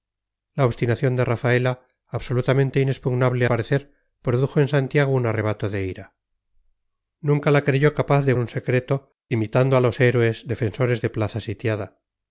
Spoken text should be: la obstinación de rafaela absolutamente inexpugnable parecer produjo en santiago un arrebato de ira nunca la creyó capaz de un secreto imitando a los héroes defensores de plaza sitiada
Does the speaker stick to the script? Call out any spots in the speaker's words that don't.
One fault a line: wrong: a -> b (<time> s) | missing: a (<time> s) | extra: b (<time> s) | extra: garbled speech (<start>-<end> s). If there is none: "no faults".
no faults